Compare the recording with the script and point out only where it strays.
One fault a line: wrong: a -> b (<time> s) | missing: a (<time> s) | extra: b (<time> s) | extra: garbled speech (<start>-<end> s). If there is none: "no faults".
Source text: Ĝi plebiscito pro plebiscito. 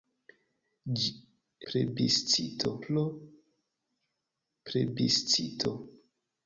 no faults